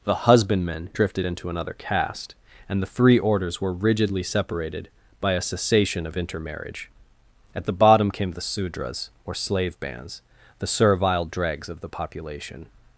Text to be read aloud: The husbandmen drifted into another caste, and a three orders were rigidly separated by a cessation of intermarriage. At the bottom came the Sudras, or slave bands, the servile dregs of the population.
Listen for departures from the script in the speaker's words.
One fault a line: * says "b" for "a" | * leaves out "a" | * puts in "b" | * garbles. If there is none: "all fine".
* says "the" for "a"